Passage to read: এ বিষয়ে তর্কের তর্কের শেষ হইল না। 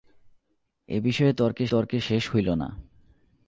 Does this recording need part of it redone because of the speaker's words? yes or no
no